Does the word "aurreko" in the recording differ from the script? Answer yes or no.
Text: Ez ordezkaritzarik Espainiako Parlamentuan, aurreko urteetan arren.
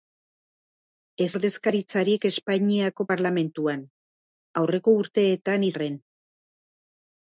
no